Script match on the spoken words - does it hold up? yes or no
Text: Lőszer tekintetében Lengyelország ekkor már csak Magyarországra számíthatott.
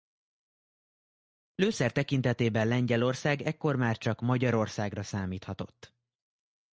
yes